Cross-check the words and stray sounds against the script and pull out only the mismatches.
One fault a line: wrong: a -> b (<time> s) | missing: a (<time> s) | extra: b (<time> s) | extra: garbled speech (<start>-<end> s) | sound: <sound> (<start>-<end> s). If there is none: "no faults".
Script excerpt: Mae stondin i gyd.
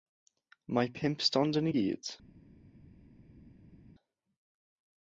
extra: pump (1.0 s)